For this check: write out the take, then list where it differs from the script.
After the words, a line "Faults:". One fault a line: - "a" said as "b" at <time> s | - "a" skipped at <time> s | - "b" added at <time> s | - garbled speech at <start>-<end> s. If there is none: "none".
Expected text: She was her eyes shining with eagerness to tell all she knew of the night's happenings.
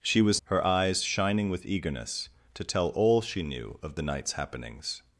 She was her eyes shining with eagerness to tell all she knew of the night's happenings.
Faults:
none